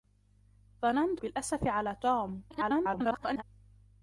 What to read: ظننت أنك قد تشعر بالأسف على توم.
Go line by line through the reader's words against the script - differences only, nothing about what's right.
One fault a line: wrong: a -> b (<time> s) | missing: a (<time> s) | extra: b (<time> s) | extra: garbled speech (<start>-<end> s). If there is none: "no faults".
missing: أنك قد تشعر (1.2 s)
extra: garbled speech (2.5-3.4 s)